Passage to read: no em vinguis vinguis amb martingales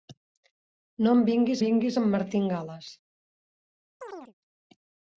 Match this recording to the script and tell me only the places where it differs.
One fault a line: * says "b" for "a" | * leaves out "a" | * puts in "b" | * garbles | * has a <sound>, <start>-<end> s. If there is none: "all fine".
* has a chirp, 4.0-4.3 s